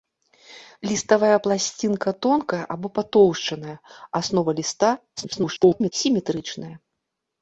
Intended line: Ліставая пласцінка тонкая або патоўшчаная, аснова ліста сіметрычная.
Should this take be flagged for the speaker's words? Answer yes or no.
yes